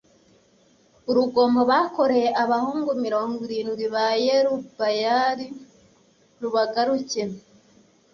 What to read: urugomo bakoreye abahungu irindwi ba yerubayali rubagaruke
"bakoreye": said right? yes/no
yes